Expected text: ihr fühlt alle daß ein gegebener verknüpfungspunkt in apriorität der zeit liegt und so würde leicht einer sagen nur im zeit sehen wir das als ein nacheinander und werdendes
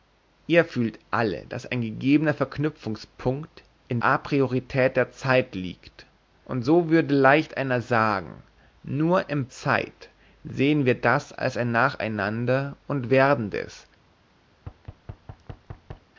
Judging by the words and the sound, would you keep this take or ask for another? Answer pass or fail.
fail